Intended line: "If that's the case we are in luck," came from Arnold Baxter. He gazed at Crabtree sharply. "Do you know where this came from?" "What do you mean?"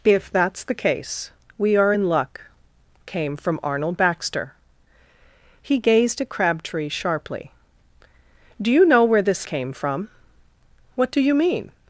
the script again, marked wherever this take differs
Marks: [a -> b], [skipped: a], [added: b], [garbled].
"If that's the case we are in luck," came from Arnold Baxter. He gazed at Crabtree sharply. "Do you know where this came from?" "What do you mean?"